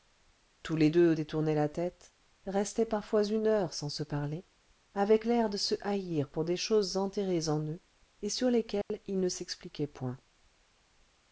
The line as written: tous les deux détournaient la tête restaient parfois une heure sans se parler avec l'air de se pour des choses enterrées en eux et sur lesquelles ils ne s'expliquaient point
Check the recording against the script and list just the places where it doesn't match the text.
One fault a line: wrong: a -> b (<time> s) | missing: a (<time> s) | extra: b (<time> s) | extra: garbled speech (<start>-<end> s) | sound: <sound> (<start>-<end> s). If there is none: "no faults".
extra: haïr (5.8 s)
sound: dropout (8.8-8.9 s)